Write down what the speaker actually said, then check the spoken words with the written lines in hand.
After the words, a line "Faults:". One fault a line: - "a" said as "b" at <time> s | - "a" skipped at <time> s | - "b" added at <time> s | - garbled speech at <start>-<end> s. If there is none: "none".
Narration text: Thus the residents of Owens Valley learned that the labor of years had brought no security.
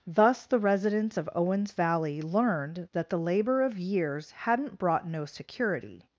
Thus the residents of Owens Valley learned that the labor of years hadn't brought no security.
Faults:
- "had" said as "hadn't" at 4.3 s